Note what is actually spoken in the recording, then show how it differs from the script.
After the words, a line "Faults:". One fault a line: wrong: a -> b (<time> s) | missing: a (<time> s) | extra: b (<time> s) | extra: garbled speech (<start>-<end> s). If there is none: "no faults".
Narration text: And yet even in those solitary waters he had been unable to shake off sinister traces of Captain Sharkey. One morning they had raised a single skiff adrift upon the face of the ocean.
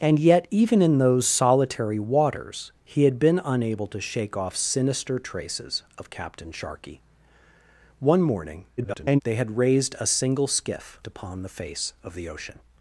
And yet even in those solitary waters he had been unable to shake off sinister traces of Captain Sharkey. One morning [garbled] they had raised a single skiff upon the face of the ocean.
Faults:
extra: garbled speech (8.8-9.2 s)
missing: adrift (11.0 s)